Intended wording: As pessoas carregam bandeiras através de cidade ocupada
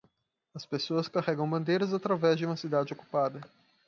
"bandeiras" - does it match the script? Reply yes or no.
yes